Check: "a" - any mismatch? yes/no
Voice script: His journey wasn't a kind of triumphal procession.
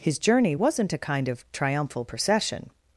no